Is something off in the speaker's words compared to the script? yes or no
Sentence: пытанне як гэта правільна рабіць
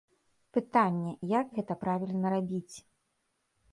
no